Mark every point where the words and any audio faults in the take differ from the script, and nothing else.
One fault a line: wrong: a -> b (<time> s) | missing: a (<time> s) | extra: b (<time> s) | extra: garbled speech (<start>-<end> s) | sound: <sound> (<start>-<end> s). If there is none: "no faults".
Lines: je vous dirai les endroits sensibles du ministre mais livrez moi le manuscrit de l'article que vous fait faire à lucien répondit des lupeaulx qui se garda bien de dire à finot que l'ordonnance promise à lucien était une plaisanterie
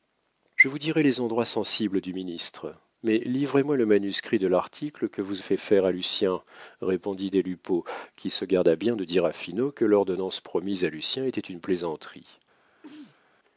sound: sneeze (12.8-13.2 s)